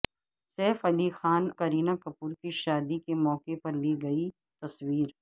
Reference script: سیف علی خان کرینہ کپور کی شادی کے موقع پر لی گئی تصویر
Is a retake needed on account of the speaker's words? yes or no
no